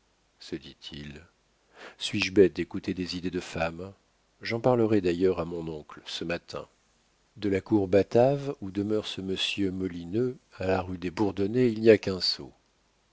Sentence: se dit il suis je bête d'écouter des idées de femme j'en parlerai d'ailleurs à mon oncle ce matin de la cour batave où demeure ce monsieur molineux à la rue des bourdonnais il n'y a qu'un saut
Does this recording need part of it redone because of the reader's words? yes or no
no